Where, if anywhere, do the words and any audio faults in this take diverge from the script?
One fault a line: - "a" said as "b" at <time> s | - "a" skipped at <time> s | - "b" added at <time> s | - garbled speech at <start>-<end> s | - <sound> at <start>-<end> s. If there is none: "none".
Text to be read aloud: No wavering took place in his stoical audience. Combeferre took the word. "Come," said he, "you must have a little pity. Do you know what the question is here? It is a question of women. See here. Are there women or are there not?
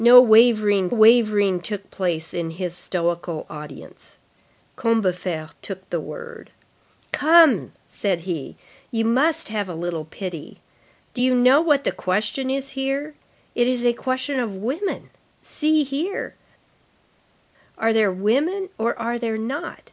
- "wavering" added at 0.9 s